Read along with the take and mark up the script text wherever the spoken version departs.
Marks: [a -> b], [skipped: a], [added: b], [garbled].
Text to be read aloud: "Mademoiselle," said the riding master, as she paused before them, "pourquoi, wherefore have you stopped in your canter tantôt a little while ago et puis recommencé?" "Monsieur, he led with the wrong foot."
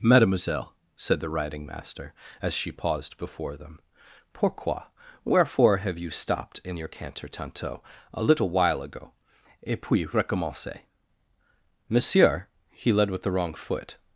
"Mademoiselle," said the riding master, as she paused before them, "pourquoi, wherefore have you stopped in your canter tantôt a little while ago et puis recommencé?" "Monsieur, he led with the wrong foot."